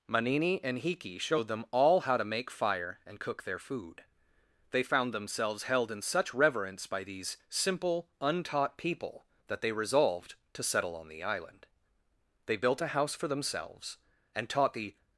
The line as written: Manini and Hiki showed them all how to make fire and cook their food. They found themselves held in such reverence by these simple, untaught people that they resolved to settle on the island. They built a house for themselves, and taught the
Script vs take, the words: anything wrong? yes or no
no